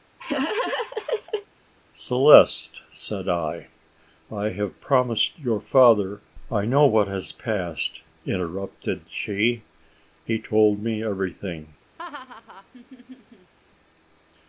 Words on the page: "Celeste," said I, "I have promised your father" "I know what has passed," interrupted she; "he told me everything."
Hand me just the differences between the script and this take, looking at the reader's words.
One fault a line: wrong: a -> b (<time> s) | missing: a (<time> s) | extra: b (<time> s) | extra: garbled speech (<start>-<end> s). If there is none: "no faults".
no faults